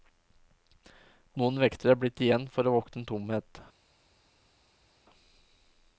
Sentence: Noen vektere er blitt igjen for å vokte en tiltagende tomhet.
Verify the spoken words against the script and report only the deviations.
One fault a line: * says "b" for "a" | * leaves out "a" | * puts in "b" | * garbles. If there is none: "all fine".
* leaves out "tiltagende"